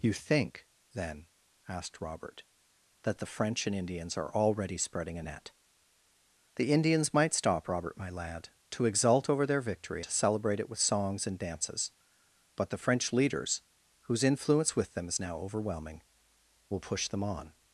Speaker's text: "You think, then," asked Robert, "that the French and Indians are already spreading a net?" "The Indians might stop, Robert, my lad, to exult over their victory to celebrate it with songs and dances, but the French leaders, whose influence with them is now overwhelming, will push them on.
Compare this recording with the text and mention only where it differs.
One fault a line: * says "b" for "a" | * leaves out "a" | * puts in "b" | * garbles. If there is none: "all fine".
all fine